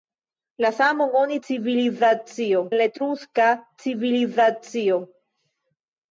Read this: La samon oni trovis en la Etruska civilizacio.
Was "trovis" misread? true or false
true